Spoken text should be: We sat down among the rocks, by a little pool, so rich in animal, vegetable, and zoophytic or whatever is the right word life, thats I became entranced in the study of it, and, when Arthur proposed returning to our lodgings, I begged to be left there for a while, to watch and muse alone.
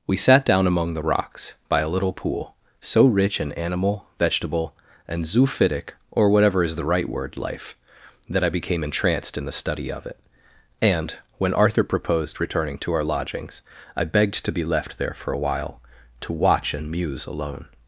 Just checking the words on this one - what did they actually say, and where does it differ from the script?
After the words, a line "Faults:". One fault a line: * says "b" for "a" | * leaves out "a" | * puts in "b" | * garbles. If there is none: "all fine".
We sat down among the rocks, by a little pool, so rich in animal, vegetable, and zoophytic or whatever is the right word life, that I became entranced in the study of it, and, when Arthur proposed returning to our lodgings, I begged to be left there for a while, to watch and muse alone.
Faults:
* says "that" for "thats"